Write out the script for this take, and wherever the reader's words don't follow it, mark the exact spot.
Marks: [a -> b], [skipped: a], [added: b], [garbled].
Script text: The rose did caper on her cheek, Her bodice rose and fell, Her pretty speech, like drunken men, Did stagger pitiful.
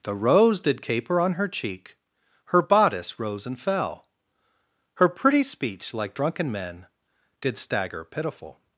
The rose did caper on her cheek, Her bodice rose and fell, Her pretty speech, like drunken men, Did stagger pitiful.